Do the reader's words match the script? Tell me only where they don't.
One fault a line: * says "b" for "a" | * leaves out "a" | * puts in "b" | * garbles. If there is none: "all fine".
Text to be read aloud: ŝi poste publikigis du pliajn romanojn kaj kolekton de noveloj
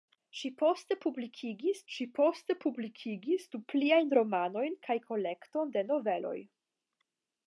* puts in "ŝi poste publikigis"